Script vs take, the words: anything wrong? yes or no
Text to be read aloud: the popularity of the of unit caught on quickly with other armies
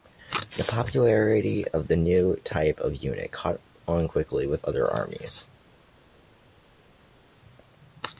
yes